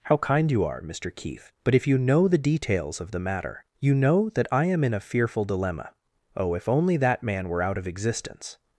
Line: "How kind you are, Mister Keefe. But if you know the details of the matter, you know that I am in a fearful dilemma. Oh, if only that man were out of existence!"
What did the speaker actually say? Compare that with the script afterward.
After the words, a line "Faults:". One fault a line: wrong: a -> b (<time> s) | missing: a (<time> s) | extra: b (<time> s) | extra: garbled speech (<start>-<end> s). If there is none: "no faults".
"How kind you are, Mister Keefe. But if you know the details of the matter, you know that I am in a fearful dilemma. Oh, if only that man were out of existence!"
Faults:
no faults